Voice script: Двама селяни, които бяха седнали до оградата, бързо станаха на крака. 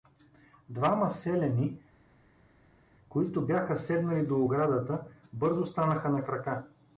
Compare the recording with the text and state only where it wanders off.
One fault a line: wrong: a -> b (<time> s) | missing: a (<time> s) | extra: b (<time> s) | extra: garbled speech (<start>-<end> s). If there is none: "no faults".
no faults